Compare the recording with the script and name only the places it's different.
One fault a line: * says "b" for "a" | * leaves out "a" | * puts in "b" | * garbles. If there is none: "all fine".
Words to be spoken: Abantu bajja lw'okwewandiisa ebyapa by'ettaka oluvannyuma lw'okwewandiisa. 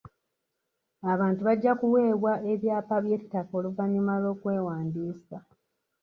* says "kuweebwa" for "lw'okwewandiisa"